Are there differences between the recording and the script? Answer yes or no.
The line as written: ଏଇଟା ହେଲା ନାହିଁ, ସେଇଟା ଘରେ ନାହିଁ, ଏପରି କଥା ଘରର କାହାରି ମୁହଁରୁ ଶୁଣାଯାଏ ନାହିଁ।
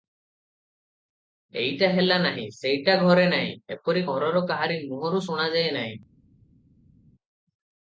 yes